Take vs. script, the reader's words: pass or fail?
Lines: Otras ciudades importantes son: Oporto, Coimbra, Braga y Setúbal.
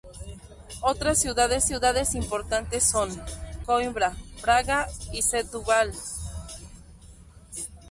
fail